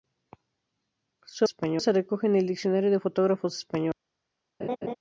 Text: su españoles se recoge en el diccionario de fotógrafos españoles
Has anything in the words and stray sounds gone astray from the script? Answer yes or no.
yes